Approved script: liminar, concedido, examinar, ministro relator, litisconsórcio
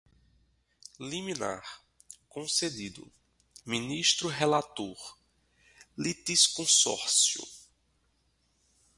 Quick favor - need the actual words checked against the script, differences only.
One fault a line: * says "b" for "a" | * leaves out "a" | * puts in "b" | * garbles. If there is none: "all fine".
* leaves out "examinar"